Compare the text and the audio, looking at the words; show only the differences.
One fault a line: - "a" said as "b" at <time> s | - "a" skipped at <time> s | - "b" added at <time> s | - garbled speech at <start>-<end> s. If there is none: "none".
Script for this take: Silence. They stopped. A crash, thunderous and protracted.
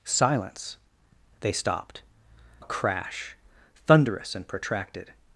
none